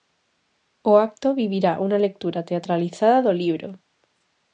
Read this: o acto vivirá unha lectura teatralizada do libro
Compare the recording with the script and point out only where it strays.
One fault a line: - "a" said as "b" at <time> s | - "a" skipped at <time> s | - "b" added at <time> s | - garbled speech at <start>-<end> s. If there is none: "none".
none